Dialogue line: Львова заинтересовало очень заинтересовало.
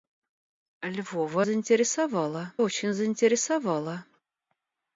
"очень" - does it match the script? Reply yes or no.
yes